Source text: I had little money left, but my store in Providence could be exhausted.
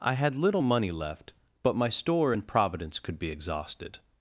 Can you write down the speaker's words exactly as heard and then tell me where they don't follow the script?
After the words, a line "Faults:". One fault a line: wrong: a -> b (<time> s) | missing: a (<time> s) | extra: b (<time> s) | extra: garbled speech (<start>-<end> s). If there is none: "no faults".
I had little money left, but my store in Providence could be exhausted.
Faults:
no faults